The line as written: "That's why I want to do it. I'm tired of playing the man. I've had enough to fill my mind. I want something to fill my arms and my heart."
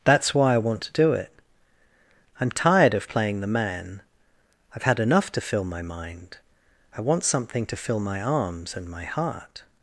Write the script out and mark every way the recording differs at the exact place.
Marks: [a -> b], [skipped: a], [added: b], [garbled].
"That's why I want to do it. I'm tired of playing the man. I've had enough to fill my mind. I want something to fill my arms and my heart."